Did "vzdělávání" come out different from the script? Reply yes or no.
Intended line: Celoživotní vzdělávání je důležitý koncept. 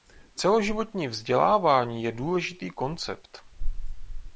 no